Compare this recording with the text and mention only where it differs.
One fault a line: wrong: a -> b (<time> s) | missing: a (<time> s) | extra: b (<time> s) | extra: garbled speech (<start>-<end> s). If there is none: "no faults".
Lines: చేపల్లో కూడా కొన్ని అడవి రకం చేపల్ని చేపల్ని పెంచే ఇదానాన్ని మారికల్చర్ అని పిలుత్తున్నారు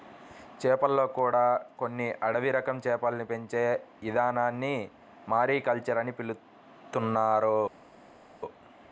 missing: చేపల్ని (3.2 s)